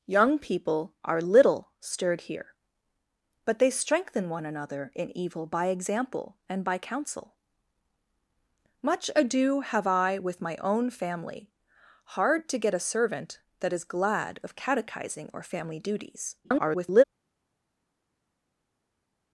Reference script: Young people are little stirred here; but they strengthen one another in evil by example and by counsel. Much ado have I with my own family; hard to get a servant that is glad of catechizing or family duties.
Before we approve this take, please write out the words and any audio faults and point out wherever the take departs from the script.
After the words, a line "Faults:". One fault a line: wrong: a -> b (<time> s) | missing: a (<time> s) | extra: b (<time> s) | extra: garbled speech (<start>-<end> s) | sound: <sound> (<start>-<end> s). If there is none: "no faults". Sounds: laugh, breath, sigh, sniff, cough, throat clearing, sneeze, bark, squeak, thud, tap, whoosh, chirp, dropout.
Young people are little stirred here; but they strengthen one another in evil by example and by counsel. Much ado have I with my own family; hard to get a servant that is glad of catechizing or family duties. [garbled]
Faults:
extra: garbled speech (16.4-17.0 s)